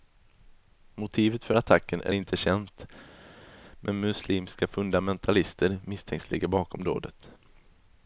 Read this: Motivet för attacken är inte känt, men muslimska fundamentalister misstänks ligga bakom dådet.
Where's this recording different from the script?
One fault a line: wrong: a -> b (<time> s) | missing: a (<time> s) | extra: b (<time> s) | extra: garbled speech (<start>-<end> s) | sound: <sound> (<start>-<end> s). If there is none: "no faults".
no faults